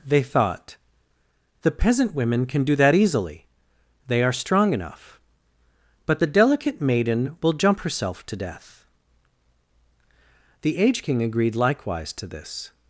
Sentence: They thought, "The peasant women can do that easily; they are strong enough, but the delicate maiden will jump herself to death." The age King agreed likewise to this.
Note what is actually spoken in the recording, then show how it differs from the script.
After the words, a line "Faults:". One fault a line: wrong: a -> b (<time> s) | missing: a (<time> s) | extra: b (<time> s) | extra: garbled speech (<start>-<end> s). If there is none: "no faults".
They thought, "The peasant women can do that easily; they are strong enough, but the delicate maiden will jump herself to death." The age King agreed likewise to this.
Faults:
no faults